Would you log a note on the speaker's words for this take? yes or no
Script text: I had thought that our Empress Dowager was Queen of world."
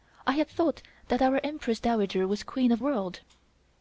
no